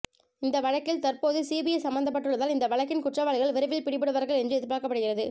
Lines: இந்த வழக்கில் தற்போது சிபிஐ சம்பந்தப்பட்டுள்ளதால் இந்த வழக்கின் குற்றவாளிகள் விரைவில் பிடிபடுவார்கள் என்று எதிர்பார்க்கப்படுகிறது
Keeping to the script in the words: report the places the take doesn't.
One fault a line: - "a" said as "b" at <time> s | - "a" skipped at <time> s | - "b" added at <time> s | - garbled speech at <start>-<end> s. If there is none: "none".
none